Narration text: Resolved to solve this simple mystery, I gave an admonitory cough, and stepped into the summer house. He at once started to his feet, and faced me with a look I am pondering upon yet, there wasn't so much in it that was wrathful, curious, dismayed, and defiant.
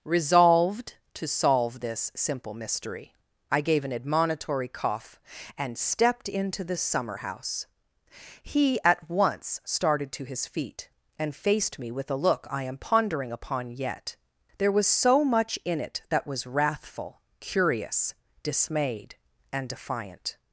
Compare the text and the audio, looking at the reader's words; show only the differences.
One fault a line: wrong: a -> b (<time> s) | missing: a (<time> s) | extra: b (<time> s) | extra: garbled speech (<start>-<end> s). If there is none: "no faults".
wrong: wasn't -> was (14.7 s)